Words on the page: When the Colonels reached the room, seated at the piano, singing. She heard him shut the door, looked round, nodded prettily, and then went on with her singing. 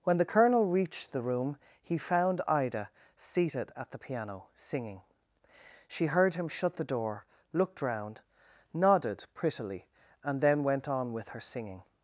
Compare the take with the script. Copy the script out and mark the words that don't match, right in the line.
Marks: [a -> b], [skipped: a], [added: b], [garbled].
When the [Colonels -> Colonel] reached the room, [added: he found Ida] seated at the piano, singing. She heard him shut the door, looked round, nodded prettily, and then went on with her singing.